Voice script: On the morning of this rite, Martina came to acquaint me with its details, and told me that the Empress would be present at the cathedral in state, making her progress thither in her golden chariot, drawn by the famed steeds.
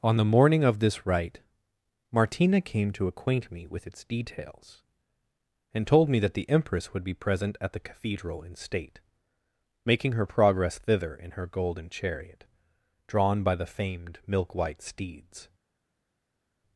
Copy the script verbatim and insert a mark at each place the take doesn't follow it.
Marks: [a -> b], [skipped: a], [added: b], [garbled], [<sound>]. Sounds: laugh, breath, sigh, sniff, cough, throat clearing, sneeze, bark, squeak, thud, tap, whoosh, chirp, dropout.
On the morning of this rite, Martina came to acquaint me with its details, and told me that the Empress would be present at the cathedral in state, making her progress thither in her golden chariot, drawn by the famed [added: milk white] steeds.